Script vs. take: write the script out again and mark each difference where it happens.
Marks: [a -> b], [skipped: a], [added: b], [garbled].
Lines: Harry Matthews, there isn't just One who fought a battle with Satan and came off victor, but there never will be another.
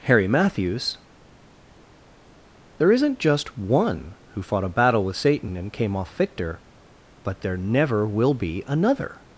Harry Matthews, there isn't just One who fought a battle with Satan and came off victor, but there never will be another.